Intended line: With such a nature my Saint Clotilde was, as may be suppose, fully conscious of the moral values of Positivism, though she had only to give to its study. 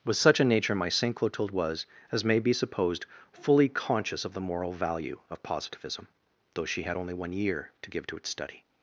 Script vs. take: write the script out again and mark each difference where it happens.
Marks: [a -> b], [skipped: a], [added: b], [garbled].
With such a nature my Saint Clotilde was, as may be [suppose, -> supposed] fully conscious of the moral [values -> value] of Positivism, though she had only [added: one year] to give to its study.